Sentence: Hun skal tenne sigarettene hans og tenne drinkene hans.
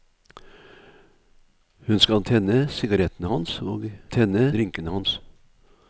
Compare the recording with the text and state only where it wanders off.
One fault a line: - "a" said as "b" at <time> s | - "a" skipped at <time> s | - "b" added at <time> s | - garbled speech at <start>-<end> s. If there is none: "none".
none